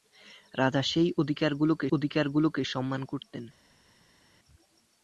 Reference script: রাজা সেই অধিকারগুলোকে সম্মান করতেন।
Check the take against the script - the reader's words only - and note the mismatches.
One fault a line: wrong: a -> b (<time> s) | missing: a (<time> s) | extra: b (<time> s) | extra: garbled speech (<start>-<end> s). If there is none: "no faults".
extra: অধিকারগুলোকে (1.9 s)